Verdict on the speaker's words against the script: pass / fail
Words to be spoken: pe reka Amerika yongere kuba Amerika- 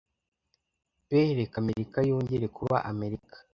pass